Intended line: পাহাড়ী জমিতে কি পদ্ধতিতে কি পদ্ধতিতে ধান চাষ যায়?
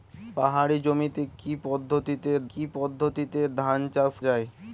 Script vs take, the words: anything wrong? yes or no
no